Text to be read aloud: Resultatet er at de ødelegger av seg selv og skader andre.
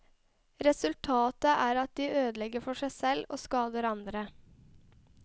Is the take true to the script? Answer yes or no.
no